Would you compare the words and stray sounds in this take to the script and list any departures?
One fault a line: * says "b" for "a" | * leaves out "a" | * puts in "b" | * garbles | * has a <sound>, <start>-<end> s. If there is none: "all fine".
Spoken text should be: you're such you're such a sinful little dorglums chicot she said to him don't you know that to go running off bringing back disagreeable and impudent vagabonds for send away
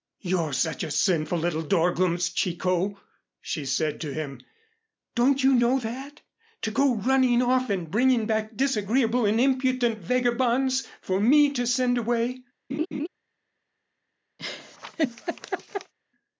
* leaves out "you're such"
* puts in "and"
* puts in "me to"
* has a laugh, 12.7-13.1 s
* has a laugh, 14.4-15.9 s